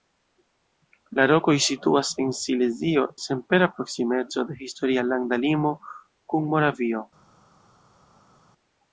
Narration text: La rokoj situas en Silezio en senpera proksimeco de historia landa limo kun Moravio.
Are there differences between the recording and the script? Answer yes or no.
yes